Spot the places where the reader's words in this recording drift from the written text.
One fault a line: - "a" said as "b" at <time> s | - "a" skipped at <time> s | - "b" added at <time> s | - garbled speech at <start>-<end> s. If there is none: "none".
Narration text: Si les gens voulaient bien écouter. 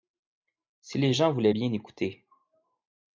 none